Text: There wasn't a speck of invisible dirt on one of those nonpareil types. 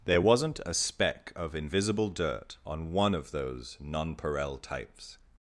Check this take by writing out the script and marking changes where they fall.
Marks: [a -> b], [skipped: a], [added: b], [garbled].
There wasn't a speck of invisible dirt on one of those nonpareil types.